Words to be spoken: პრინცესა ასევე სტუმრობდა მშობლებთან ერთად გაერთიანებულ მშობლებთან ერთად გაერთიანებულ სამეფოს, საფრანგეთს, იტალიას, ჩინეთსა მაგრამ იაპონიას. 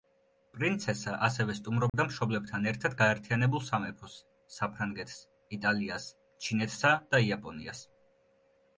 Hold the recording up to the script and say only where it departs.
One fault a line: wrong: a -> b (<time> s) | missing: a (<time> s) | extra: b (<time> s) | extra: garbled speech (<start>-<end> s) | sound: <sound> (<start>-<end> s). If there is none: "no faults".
sound: dropout (1.9-1.9 s)
missing: მშობლებთან ერთად გაერთიანებულ (3.7 s)
wrong: მაგრამ -> და (7.1 s)